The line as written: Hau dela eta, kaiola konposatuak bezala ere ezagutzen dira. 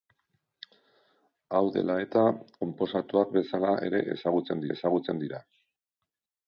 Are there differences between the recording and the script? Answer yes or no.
yes